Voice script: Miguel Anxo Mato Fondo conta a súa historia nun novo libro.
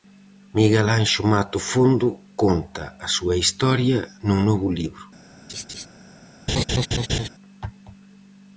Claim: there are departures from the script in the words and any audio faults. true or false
true